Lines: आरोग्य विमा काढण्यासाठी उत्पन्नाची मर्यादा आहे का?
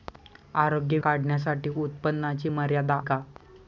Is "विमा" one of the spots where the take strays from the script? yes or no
yes